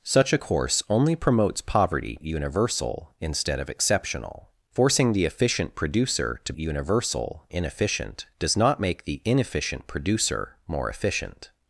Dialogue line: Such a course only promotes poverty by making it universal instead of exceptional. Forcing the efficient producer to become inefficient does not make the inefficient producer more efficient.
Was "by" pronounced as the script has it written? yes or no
no